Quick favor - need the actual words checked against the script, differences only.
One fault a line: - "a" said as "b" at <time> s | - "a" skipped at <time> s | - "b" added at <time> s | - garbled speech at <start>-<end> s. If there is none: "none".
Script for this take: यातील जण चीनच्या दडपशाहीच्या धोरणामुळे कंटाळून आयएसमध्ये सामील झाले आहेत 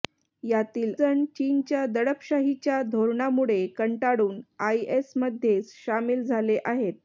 none